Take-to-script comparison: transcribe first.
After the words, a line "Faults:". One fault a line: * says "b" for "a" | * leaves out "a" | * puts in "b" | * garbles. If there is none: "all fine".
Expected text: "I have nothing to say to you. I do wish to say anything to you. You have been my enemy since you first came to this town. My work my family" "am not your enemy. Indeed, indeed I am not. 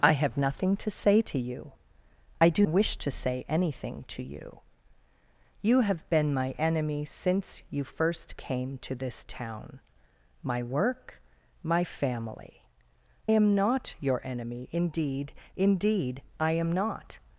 "I have nothing to say to you. I do wish to say anything to you. You have been my enemy since you first came to this town. My work my family" "am not your enemy. Indeed, indeed I am not.
Faults:
all fine